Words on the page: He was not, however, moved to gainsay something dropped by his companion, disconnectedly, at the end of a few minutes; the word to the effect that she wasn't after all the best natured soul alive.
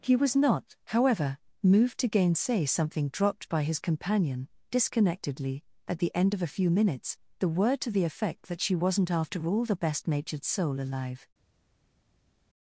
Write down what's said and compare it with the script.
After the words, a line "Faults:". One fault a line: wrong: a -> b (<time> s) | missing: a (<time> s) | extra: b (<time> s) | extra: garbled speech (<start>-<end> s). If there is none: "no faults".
He was not, however, moved to gainsay something dropped by his companion, disconnectedly, at the end of a few minutes; the word to the effect that she wasn't after all the best natured soul alive.
Faults:
no faults